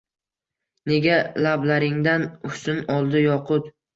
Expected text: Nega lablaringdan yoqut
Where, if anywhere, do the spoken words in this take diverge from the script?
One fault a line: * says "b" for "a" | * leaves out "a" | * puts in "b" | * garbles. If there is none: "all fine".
* puts in "husn oldi"